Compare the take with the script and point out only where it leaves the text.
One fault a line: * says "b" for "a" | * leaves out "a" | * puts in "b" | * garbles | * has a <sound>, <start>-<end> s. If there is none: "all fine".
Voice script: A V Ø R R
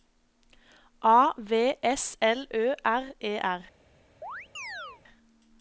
* puts in "S L"
* puts in "E"
* has a chirp, 4.2-5.0 s